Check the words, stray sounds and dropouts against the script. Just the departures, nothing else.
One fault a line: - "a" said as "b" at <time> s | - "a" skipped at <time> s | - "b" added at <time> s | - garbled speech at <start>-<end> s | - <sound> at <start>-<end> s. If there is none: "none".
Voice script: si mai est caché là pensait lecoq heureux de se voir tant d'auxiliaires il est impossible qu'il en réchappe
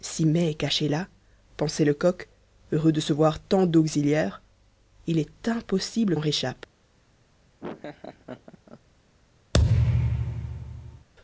- "qu'il" skipped at 6.2 s
- laugh at 7.6-8.8 s
- thud at 9.5-11.1 s